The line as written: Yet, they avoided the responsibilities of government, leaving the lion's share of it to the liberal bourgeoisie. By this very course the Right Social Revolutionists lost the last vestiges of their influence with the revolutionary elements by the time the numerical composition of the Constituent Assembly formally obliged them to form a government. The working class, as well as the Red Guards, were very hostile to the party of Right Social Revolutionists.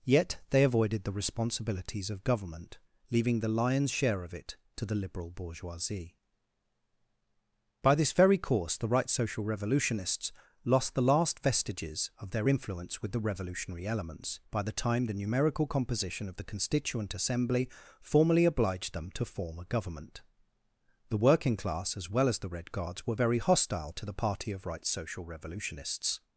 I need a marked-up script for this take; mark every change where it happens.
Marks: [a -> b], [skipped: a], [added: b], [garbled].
Yet, they avoided the responsibilities of government, leaving the lion's share of it to the liberal bourgeoisie. By this very course the Right Social Revolutionists lost the last vestiges of their influence with the revolutionary elements by the time the numerical composition of the Constituent Assembly formally obliged them to form a government. The working class, as well as the Red Guards, were very hostile to the party of Right Social Revolutionists.